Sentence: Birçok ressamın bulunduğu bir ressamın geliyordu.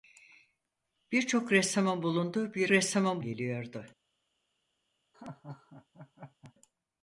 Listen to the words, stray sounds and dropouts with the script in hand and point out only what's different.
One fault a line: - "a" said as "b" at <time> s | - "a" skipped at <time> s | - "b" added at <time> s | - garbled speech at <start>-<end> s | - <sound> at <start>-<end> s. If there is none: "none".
- laugh at 5.1-6.5 s